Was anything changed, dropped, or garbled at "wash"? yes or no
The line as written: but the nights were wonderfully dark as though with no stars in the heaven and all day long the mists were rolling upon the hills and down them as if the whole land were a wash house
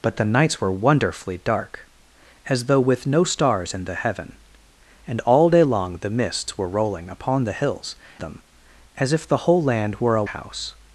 yes